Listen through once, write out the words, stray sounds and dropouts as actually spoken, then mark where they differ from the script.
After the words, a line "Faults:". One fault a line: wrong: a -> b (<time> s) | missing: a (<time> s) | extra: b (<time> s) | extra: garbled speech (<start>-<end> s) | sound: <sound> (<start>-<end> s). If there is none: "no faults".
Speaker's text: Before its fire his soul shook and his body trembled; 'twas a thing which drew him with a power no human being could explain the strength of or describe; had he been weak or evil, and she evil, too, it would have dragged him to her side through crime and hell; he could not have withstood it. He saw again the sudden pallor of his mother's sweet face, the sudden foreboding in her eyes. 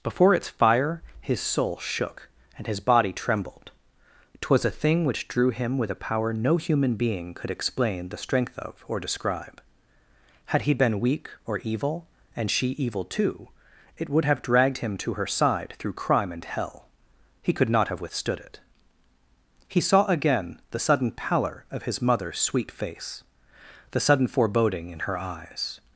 Before its fire his soul shook and his body trembled; 'twas a thing which drew him with a power no human being could explain the strength of or describe; had he been weak or evil, and she evil, too, it would have dragged him to her side through crime and hell; he could not have withstood it. He saw again the sudden pallor of his mother's sweet face, the sudden foreboding in her eyes.
Faults:
no faults